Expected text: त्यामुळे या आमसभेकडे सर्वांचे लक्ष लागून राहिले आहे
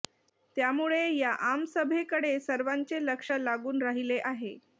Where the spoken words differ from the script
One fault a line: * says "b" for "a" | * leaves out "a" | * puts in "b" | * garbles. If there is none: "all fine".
all fine